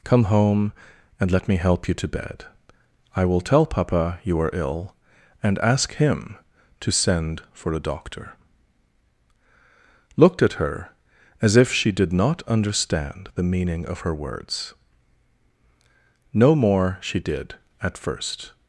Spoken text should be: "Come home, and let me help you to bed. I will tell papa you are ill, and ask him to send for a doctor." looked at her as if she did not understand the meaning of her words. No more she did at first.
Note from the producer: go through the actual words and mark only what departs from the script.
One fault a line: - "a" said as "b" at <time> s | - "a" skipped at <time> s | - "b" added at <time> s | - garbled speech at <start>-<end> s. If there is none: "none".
none